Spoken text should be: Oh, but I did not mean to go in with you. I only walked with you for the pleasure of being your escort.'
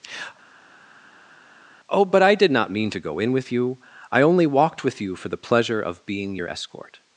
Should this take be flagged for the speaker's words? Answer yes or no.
no